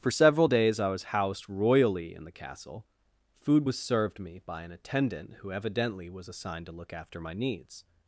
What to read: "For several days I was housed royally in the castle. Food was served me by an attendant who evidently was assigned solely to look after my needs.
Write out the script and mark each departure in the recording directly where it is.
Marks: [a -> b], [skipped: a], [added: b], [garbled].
"For several days I was housed royally in the castle. Food was served me by an attendant who evidently was assigned [skipped: solely] to look after my needs.